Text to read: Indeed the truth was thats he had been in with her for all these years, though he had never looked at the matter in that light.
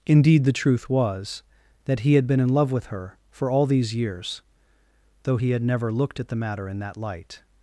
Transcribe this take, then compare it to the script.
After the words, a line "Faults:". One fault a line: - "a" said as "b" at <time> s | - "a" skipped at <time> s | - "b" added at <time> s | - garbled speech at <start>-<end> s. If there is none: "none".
Indeed the truth was that he had been in love with her for all these years, though he had never looked at the matter in that light.
Faults:
- "thats" said as "that" at 1.9 s
- "love" added at 2.5 s